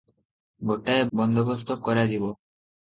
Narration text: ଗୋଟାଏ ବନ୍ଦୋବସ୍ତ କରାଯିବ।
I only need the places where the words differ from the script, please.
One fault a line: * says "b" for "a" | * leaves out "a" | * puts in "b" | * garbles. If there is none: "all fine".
all fine